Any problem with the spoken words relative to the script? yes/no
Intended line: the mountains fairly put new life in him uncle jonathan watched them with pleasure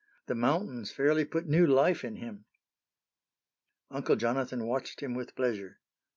yes